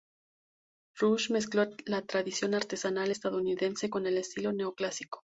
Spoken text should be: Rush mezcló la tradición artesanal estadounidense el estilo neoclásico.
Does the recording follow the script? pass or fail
fail